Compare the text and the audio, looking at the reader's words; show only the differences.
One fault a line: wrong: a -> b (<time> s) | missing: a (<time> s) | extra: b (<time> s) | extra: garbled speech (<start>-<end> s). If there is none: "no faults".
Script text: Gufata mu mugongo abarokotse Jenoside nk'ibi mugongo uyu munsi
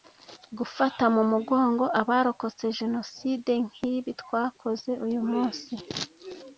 wrong: mugongo -> twakoze (4.2 s)